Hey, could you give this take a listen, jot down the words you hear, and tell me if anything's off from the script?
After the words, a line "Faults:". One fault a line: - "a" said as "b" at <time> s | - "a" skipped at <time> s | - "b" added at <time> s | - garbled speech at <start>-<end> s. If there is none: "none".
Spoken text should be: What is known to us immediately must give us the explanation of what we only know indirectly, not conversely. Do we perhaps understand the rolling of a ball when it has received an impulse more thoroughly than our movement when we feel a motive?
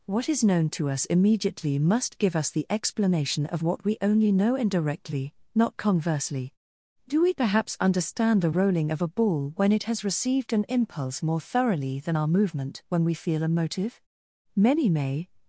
What is known to us immediately must give us the explanation of what we only know indirectly, not conversely. Do we perhaps understand the rolling of a ball when it has received an impulse more thoroughly than our movement when we feel a motive? Many may
Faults:
- "Many may" added at 14.6 s